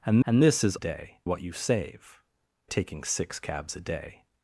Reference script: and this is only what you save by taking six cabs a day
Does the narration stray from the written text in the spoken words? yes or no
yes